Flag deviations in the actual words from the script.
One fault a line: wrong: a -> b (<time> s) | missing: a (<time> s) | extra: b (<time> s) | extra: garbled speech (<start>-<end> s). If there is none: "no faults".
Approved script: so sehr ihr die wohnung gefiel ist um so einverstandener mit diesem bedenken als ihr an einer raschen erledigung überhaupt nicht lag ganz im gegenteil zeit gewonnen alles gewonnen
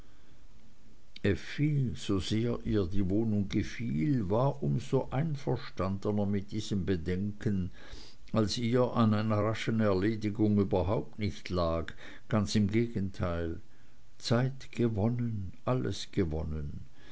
wrong: ist -> war (4.3 s)